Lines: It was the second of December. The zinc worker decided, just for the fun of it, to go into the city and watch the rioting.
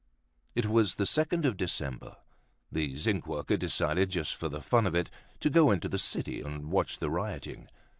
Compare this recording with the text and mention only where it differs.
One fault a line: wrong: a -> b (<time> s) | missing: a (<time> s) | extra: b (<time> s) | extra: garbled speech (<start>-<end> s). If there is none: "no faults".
no faults